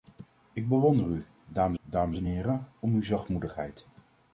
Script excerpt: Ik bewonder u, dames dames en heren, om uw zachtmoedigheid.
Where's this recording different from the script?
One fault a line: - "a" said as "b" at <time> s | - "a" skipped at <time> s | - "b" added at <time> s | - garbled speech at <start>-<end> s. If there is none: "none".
none